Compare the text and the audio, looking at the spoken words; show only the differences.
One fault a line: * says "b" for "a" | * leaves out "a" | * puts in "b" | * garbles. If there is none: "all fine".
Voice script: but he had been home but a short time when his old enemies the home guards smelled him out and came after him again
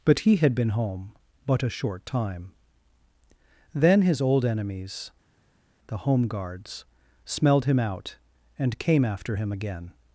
* says "then" for "when"